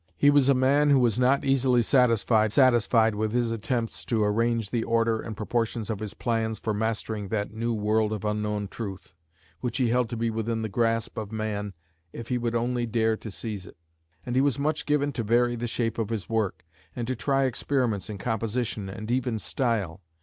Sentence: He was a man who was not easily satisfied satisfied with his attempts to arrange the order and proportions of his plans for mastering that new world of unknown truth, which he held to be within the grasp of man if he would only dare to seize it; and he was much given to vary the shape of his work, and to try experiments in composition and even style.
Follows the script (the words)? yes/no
yes